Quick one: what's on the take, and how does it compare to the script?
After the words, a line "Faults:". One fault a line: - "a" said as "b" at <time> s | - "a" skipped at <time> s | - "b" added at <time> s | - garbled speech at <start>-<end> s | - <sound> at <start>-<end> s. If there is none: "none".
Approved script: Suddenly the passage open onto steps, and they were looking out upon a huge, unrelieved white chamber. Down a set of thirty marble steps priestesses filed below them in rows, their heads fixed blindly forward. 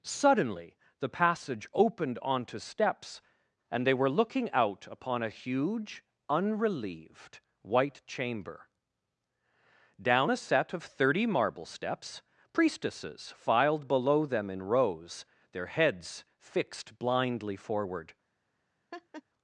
Suddenly the passage opened onto steps, and they were looking out upon a huge, unrelieved white chamber. Down a set of thirty marble steps priestesses filed below them in rows, their heads fixed blindly forward.
Faults:
- "open" said as "opened" at 1.7 s
- laugh at 18.9-19.2 s